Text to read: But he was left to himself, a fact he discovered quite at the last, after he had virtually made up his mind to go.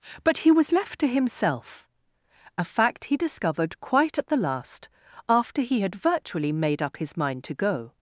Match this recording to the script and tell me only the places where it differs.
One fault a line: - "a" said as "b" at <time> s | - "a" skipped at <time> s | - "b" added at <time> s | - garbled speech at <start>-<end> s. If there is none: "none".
none